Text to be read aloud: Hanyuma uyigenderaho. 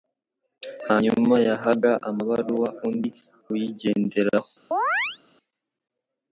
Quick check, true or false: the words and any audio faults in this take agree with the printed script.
false